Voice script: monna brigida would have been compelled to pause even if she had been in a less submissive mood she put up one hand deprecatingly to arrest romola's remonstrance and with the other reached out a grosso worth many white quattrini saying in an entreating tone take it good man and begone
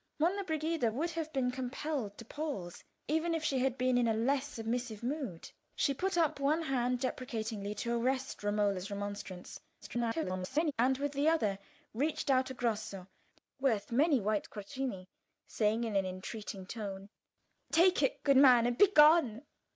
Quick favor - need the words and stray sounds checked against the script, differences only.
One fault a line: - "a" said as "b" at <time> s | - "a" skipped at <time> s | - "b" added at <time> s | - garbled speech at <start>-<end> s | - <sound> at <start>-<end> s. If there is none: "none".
- garbled speech at 9.8-10.7 s